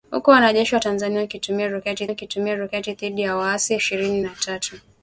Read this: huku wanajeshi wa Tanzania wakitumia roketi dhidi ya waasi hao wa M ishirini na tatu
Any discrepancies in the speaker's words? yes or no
yes